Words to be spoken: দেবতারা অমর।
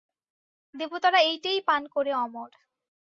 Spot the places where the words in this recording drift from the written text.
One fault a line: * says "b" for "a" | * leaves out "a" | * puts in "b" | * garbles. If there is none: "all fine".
* puts in "এইটেই পান করে"